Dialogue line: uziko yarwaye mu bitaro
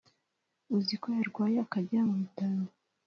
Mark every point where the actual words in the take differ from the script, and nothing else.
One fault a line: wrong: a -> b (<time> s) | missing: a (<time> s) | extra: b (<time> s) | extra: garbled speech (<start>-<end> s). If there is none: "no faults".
extra: akajya (1.6 s)